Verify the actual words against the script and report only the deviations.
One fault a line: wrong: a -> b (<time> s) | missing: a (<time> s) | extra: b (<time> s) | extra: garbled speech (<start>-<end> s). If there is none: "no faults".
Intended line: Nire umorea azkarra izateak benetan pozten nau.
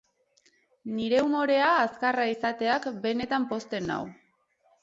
no faults